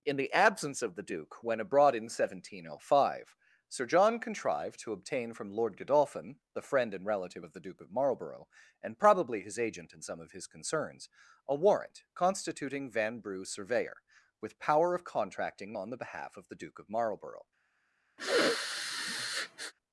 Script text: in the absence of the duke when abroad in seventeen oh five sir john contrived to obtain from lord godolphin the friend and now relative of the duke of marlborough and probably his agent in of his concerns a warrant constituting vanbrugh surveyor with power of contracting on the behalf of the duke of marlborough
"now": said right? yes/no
no